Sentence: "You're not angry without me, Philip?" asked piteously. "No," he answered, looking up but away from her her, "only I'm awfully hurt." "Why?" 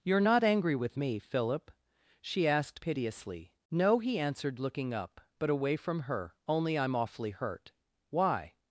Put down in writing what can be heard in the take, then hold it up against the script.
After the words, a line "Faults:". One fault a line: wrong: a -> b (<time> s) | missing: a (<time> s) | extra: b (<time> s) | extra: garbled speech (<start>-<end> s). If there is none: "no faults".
"You're not angry with me, Philip?" she asked piteously. "No," he answered, looking up but away from her, "only I'm awfully hurt." "Why?"
Faults:
wrong: without -> with (0.8 s)
extra: she (2.2 s)
missing: her (6.3 s)